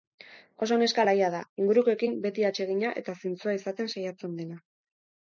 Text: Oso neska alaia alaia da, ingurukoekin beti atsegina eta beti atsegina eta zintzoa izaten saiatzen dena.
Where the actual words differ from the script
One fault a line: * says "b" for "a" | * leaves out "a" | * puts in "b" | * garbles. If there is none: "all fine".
* leaves out "alaia"
* leaves out "beti atsegina eta"